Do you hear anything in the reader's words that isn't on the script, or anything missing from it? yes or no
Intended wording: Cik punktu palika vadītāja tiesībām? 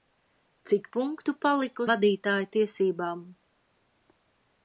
no